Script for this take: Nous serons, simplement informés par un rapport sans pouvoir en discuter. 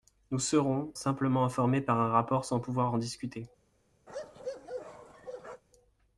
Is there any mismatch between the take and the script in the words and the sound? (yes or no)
yes